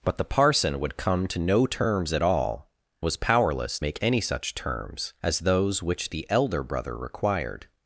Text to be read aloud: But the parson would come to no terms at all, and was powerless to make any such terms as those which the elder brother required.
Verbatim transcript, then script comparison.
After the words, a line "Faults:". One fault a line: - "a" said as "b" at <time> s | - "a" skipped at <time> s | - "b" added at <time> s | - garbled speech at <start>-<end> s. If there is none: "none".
But the parson would come to no terms at all, was powerless make any such terms as those which the elder brother required.
Faults:
- "and" skipped at 2.7 s
- "to" skipped at 3.8 s